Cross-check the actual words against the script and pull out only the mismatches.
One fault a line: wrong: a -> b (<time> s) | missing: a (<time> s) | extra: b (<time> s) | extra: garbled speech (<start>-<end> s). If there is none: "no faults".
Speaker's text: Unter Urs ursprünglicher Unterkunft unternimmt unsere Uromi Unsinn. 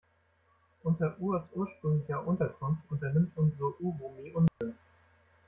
no faults